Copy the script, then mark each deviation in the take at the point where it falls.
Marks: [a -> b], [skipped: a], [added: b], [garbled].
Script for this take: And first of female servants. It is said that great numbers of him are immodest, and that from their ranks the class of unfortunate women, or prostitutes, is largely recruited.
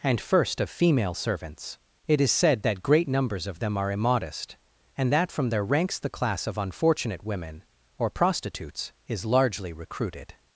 And first of female servants. It is said that great numbers of [him -> them] are immodest, and that from their ranks the class of unfortunate women, or prostitutes, is largely recruited.